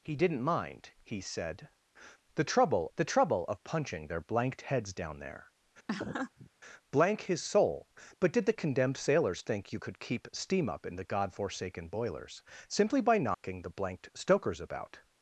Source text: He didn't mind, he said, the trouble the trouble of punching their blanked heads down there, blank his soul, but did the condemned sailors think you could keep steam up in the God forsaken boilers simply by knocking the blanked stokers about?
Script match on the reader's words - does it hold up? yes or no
yes